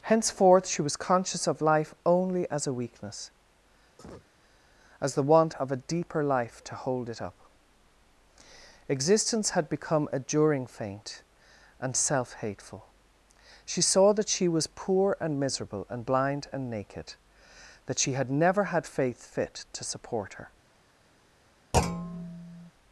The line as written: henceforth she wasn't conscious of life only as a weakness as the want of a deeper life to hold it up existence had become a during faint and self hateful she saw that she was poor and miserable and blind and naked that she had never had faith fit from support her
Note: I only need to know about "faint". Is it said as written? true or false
true